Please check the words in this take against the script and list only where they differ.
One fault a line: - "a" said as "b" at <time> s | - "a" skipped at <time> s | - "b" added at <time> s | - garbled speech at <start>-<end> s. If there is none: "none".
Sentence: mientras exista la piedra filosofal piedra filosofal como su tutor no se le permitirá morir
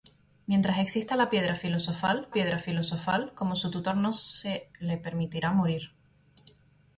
none